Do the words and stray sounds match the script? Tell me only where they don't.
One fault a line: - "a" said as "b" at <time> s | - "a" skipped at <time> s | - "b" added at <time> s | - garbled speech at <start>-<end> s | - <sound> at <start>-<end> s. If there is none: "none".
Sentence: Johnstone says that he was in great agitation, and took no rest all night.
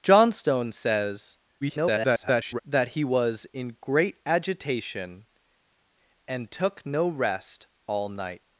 - garbled speech at 1.6-2.6 s